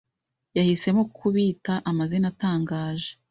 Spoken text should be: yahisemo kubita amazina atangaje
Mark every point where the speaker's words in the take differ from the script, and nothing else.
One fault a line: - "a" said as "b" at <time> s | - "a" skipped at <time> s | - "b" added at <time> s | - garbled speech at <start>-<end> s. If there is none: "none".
none